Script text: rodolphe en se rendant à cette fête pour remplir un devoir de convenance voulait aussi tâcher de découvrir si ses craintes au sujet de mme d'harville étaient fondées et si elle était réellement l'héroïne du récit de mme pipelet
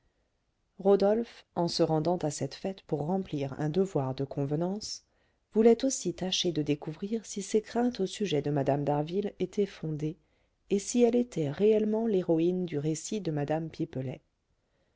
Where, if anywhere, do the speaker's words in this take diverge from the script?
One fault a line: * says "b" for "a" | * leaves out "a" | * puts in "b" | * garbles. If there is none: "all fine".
all fine